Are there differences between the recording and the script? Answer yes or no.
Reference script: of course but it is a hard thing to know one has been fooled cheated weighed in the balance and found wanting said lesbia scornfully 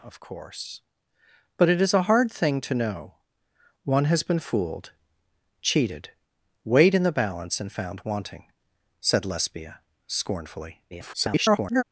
yes